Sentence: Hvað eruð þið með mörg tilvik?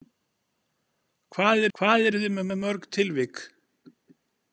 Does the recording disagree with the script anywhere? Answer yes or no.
yes